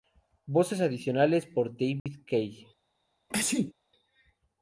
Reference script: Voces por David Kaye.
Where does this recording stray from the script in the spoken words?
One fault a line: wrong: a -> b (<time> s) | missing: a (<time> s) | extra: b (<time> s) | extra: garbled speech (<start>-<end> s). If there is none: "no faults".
extra: adicionales (0.8 s)